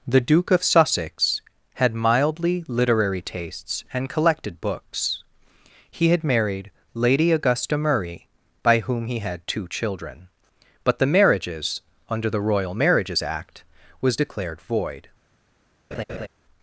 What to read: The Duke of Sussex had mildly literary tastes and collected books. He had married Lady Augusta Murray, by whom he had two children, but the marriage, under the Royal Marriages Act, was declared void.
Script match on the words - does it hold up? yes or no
no